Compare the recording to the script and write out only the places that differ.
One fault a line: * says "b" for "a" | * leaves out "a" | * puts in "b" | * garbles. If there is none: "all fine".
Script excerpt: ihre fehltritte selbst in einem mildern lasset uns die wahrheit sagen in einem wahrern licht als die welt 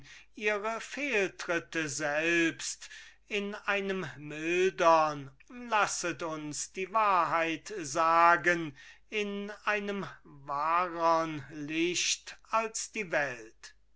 all fine